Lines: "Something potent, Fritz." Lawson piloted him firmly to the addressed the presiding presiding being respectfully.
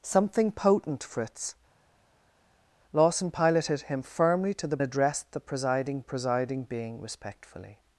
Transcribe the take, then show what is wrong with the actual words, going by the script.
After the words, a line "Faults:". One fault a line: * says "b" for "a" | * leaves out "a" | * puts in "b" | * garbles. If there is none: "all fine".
"Something potent, Fritz." Lawson piloted him firmly to the addressed the presiding presiding being respectfully.
Faults:
all fine